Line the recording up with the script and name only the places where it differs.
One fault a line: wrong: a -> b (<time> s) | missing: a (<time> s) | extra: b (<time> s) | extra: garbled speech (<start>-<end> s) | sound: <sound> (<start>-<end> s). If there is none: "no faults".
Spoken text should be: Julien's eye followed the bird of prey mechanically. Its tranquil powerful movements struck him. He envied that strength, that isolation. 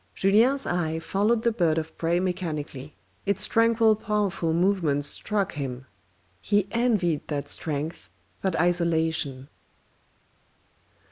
no faults